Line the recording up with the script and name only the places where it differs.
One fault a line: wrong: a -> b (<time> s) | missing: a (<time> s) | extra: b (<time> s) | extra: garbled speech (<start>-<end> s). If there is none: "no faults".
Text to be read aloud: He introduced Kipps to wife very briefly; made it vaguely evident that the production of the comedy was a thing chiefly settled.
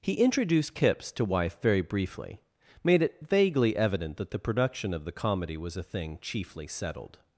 no faults